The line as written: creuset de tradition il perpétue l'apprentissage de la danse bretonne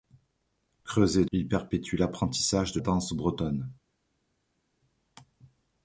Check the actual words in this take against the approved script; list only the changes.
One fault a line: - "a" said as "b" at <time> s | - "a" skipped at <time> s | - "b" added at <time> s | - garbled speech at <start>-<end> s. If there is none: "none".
- "de tradition" skipped at 1.2 s
- "la" skipped at 2.8 s